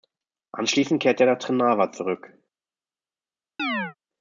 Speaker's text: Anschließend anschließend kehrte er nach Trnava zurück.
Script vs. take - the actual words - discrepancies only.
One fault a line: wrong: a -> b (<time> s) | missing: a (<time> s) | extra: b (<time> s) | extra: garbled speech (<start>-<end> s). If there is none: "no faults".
missing: anschließend (1.0 s)